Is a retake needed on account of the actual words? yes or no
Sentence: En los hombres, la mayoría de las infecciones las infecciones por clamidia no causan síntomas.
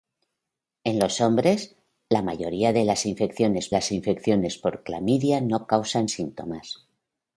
no